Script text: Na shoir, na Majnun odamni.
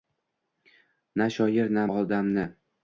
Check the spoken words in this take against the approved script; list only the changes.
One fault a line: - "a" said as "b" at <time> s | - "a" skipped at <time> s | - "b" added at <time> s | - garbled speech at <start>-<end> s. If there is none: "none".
- "Majnun" skipped at 1.8 s